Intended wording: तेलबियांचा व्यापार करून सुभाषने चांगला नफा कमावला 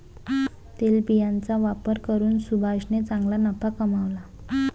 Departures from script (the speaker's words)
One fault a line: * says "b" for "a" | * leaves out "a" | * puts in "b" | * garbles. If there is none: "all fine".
all fine